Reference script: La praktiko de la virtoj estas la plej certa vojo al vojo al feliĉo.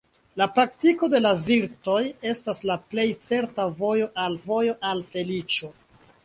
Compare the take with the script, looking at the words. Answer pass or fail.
pass